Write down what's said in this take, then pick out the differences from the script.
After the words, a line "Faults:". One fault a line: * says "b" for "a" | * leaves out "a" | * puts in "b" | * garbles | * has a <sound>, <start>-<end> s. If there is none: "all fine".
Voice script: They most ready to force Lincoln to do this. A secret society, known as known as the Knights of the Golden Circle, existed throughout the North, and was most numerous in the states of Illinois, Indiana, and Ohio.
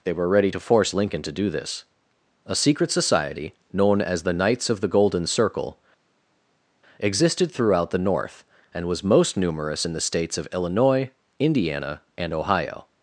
They were ready to force Lincoln to do this. A secret society, known as the Knights of the Golden Circle, existed throughout the North, and was most numerous in the states of Illinois, Indiana, and Ohio.
Faults:
* says "were" for "most"
* leaves out "known as"